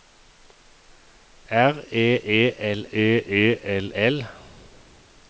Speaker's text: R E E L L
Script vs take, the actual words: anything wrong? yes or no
yes